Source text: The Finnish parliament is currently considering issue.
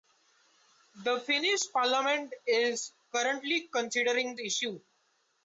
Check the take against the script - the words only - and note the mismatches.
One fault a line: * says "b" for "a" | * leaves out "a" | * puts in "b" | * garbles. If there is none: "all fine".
all fine